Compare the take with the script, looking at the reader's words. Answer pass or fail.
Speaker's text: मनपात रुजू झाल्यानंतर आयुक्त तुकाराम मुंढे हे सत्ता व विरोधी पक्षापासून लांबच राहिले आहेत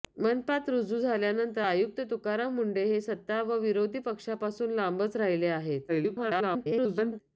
fail